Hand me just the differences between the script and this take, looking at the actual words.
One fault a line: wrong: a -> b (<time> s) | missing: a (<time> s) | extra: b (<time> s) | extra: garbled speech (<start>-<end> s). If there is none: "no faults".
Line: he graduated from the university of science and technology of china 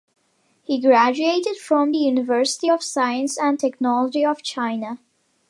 no faults